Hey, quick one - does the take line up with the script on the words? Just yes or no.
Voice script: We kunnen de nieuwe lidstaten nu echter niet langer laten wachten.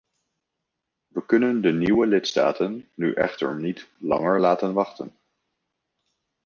yes